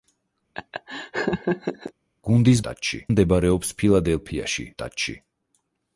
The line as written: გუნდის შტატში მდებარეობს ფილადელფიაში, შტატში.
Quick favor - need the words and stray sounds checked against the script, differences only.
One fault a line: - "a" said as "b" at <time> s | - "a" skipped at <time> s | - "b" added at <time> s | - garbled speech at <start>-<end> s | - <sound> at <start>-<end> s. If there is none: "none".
- laugh at 0.5-1.9 s